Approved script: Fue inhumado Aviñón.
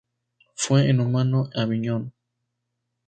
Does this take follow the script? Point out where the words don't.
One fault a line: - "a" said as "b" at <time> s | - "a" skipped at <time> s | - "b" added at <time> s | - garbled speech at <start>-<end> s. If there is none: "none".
none